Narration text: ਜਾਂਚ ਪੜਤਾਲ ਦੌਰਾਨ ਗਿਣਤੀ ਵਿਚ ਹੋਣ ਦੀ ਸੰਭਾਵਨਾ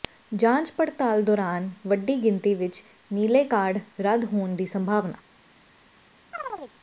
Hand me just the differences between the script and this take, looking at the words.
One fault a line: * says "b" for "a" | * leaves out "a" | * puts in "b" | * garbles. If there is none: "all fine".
* puts in "ਵੱਡੀ"
* puts in "ਨੀਲੇ ਕਾਰਡ ਰੱਦ"